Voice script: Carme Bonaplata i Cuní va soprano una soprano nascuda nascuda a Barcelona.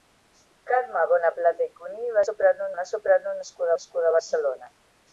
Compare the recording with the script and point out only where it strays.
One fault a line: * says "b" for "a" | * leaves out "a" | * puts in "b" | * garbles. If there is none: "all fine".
all fine